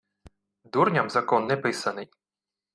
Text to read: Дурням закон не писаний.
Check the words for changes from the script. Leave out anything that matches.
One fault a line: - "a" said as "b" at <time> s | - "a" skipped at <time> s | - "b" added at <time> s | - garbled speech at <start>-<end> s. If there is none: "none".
none